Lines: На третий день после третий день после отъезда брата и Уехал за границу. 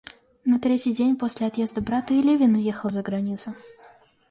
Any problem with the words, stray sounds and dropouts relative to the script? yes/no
yes